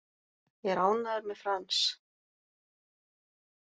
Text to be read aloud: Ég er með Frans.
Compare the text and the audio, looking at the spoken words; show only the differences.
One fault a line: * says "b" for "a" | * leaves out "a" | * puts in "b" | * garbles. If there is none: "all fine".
* puts in "ánægður"